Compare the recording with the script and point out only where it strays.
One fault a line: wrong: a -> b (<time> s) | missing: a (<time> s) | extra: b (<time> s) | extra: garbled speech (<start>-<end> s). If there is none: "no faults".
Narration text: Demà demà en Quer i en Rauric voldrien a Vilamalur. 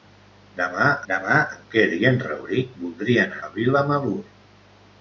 no faults